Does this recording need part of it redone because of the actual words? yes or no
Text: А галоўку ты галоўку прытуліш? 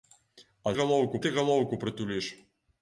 no